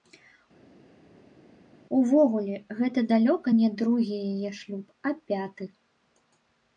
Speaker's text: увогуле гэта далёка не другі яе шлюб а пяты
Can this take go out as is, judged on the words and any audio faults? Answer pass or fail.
pass